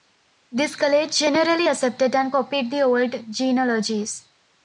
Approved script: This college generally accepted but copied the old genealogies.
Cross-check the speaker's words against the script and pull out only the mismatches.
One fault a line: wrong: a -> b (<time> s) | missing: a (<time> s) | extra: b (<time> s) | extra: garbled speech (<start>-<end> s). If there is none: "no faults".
wrong: but -> and (2.2 s)